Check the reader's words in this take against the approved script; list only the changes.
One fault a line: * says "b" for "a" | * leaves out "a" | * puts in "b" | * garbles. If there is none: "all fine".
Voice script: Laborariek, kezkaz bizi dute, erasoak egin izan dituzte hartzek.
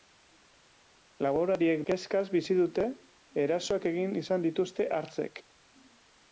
all fine